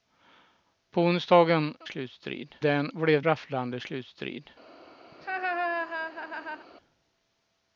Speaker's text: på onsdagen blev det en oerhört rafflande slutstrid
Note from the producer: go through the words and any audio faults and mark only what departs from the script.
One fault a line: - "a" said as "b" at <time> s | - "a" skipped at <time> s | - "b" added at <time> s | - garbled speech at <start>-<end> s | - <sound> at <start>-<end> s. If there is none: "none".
- "blev" said as "slutstrid" at 1.8 s
- "oerhört" said as "blev" at 2.9 s
- laugh at 5.1-6.7 s